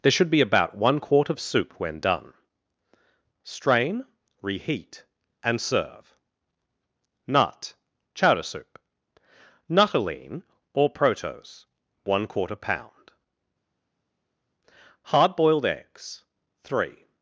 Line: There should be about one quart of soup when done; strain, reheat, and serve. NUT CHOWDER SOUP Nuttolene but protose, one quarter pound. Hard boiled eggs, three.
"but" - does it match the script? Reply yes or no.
no